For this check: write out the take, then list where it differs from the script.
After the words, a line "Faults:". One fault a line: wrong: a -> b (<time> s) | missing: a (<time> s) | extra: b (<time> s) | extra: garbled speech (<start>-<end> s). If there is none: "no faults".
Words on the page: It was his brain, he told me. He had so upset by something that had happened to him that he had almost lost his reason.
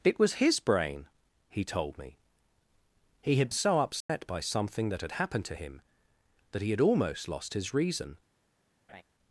It was his brain, he told me. He had so upset by something that had happened to him that he had almost lost his reason.
Faults:
no faults